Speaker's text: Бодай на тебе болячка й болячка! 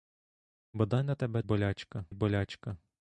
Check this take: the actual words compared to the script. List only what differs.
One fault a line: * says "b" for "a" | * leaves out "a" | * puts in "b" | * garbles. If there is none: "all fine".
all fine